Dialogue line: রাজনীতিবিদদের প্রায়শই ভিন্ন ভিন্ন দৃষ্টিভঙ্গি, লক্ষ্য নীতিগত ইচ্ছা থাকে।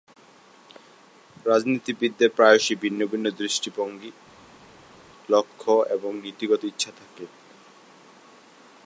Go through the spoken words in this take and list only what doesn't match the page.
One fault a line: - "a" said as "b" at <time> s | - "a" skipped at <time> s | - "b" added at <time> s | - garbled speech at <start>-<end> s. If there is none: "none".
- "এবং" added at 6.0 s